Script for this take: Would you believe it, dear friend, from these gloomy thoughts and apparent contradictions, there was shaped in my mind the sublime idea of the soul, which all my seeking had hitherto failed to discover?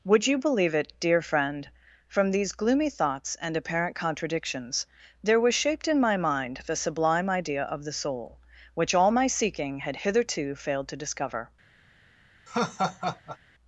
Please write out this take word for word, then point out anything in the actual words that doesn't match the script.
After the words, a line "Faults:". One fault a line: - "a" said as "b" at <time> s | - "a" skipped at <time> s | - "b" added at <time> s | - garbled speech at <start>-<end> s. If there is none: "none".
Would you believe it, dear friend, from these gloomy thoughts and apparent contradictions, there was shaped in my mind the sublime idea of the soul, which all my seeking had hitherto failed to discover?
Faults:
none